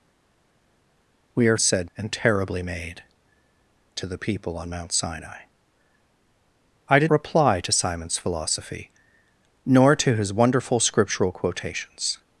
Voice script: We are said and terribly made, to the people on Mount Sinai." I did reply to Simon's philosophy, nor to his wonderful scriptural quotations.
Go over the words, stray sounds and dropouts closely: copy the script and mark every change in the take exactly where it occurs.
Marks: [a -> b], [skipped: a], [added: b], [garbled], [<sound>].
We are said and terribly made, to the people on Mount Sinai." I did reply to Simon's philosophy, nor to his wonderful scriptural quotations.